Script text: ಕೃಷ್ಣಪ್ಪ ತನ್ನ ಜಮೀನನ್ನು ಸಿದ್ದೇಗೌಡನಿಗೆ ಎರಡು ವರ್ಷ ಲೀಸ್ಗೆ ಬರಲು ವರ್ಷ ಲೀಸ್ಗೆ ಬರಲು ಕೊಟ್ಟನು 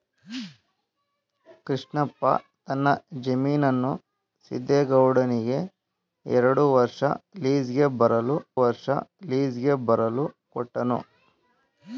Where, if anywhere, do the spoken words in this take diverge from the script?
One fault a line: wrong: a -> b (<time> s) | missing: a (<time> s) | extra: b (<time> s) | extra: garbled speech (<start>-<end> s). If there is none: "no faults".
no faults